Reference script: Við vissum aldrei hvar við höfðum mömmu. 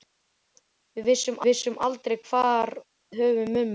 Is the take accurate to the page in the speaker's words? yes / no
no